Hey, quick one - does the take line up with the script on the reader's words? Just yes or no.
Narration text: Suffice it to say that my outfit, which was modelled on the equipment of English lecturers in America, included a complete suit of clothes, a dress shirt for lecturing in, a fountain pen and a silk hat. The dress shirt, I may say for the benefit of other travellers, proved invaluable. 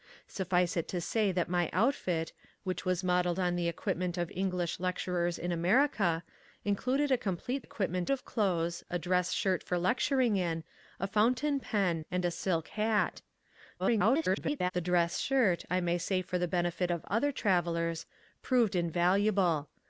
no